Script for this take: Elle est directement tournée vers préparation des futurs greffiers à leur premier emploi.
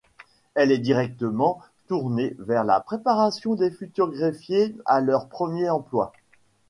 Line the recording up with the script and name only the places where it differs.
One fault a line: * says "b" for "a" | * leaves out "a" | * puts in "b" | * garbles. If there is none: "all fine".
* puts in "la"